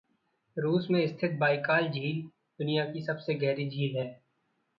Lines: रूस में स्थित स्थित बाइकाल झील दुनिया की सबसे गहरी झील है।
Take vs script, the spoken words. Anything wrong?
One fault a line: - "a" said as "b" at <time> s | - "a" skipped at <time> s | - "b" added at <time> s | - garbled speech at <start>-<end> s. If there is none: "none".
- "स्थित" skipped at 1.3 s